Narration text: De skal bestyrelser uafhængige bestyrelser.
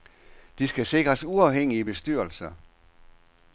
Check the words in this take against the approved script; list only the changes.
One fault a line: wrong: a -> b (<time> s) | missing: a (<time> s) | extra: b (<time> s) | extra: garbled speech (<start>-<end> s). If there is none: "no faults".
wrong: bestyrelser -> sikres (0.8 s)